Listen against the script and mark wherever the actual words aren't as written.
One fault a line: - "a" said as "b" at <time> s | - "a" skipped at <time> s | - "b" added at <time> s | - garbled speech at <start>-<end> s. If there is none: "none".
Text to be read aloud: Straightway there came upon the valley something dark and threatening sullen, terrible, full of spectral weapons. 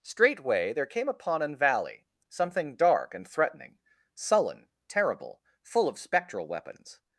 - "the" said as "an" at 1.4 s